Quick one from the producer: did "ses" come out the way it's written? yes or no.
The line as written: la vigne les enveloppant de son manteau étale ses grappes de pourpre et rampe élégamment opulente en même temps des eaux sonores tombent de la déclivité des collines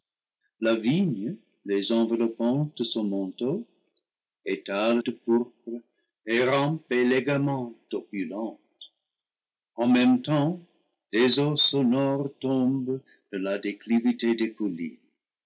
no